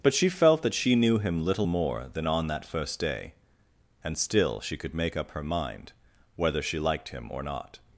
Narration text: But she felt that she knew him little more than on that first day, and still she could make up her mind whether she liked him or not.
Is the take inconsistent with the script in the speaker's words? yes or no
no